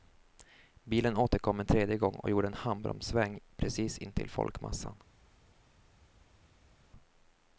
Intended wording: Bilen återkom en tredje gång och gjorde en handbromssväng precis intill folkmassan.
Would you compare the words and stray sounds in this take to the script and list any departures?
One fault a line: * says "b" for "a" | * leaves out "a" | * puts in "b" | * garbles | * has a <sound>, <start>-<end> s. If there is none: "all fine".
all fine